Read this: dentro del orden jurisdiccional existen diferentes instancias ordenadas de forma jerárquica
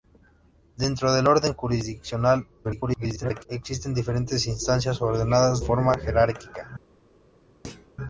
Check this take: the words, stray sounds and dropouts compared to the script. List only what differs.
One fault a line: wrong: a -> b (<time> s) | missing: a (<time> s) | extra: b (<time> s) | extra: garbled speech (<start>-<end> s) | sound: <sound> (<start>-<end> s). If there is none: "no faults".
extra: garbled speech (2.6-3.5 s)
missing: de (5.6 s)
sound: thud (7.6-7.9 s)